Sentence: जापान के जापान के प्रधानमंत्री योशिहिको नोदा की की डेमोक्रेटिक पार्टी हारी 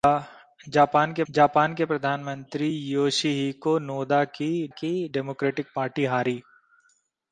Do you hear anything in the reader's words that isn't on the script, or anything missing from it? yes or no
no